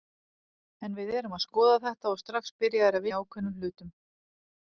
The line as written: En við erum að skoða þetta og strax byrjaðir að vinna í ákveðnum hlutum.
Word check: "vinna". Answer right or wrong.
wrong